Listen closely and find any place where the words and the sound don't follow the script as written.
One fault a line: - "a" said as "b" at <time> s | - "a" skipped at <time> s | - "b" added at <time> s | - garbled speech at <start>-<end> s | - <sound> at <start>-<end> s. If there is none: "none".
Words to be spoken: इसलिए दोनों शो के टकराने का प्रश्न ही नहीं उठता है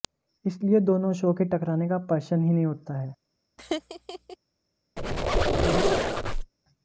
- laugh at 3.6-4.4 s
- squeak at 5.0-6.5 s